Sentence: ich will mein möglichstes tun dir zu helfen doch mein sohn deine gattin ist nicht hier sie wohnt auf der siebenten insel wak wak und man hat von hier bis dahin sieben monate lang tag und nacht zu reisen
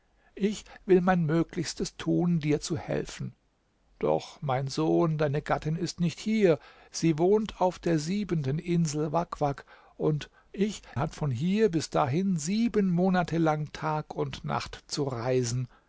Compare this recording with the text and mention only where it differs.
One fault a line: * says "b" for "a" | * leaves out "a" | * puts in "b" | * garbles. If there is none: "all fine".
* says "ich" for "man"